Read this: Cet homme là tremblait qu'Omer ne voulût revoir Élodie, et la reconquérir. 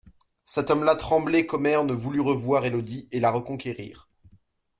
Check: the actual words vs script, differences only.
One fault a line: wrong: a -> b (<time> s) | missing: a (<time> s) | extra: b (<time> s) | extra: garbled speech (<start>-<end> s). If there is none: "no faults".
no faults